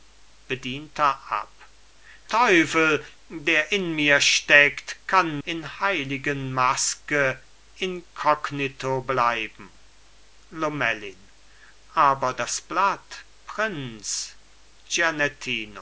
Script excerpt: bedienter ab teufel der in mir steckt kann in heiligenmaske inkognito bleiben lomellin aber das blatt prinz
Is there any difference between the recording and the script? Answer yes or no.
no